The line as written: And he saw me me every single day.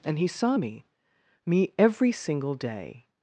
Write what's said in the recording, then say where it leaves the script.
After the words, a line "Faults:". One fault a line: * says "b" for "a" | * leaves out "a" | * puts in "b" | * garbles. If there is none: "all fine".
And he saw me me every single day.
Faults:
all fine